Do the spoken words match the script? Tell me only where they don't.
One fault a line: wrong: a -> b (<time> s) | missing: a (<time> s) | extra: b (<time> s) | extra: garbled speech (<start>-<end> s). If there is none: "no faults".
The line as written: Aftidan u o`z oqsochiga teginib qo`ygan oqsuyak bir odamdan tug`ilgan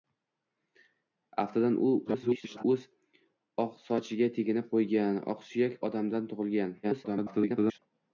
extra: garbled speech (2.0-2.6 s)
missing: bir (5.8 s)
extra: garbled speech (6.8-7.8 s)